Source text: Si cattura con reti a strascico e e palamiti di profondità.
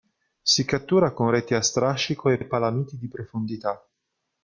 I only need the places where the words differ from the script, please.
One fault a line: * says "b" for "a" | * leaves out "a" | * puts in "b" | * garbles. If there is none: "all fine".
all fine